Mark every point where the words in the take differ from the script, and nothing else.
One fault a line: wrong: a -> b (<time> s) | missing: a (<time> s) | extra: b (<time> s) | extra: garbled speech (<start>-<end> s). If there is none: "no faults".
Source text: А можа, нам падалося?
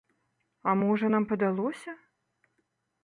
no faults